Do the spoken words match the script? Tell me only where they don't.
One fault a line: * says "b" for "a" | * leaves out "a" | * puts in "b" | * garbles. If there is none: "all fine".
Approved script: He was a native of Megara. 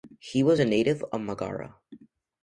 all fine